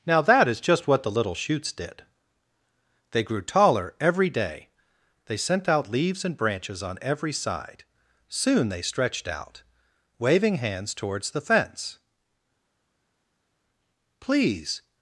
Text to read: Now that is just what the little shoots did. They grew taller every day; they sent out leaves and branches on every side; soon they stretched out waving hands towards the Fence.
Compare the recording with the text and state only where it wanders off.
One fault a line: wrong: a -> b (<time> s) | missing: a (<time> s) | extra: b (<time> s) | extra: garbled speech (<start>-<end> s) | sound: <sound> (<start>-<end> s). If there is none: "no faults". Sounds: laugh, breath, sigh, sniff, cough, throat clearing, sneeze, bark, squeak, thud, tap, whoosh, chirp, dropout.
extra: Please (14.2 s)